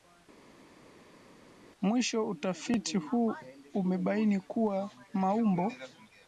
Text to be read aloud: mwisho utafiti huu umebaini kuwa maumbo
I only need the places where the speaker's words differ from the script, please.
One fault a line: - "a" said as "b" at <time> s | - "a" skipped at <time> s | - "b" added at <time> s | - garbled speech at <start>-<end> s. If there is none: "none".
none